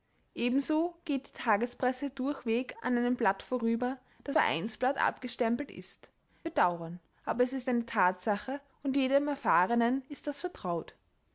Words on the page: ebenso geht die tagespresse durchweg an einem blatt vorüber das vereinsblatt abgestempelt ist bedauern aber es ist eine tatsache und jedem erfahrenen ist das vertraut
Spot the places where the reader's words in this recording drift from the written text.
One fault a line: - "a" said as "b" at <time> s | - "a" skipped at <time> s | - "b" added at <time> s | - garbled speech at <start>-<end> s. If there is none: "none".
none